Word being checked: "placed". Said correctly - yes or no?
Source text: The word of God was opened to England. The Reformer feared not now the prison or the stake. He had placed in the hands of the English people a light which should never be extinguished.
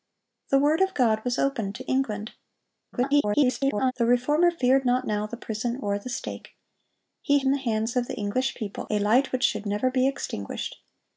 no